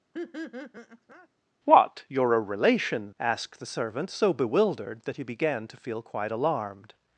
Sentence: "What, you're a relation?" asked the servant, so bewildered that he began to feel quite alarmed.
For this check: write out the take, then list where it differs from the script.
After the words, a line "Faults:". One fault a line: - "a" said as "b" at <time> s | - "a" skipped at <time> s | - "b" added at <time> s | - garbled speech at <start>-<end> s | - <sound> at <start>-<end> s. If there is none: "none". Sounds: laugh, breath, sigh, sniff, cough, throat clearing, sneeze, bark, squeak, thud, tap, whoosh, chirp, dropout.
"What, you're a relation?" asked the servant, so bewildered that he began to feel quite alarmed.
Faults:
- laugh at 0.1-1.3 s